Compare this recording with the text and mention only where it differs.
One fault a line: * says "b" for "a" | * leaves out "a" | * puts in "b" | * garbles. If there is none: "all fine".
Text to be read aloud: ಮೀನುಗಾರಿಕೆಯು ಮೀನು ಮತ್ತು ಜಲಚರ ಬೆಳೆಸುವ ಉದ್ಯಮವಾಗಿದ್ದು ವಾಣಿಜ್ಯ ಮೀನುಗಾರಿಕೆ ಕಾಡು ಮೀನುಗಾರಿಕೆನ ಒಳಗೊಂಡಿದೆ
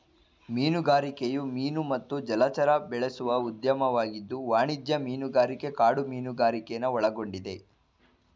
all fine